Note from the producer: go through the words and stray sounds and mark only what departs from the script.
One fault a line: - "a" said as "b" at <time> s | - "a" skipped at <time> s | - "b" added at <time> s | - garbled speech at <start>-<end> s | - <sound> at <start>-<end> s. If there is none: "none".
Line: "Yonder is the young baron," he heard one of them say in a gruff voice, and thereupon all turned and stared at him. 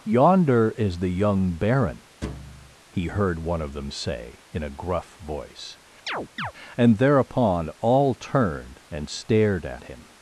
- thud at 2.2-2.8 s
- chirp at 6.1-6.5 s